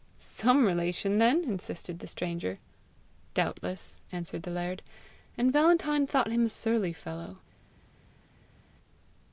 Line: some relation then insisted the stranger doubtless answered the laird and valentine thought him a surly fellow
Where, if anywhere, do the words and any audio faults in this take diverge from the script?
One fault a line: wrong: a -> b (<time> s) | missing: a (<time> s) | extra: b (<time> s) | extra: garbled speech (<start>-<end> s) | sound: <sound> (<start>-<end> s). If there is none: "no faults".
no faults